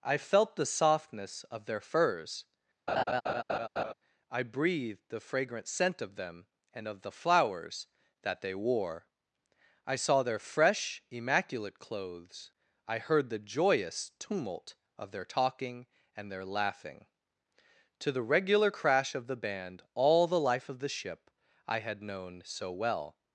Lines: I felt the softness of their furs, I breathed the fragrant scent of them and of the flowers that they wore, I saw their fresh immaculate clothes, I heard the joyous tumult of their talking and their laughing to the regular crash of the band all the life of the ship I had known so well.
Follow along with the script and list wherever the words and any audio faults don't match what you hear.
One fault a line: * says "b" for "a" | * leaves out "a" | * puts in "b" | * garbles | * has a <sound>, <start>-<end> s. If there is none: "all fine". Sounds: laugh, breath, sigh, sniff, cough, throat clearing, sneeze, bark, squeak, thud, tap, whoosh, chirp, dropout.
* has a laugh, 2.9-3.9 s